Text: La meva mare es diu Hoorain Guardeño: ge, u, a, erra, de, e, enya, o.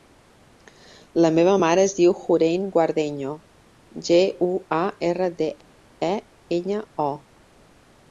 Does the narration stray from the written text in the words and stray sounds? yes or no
no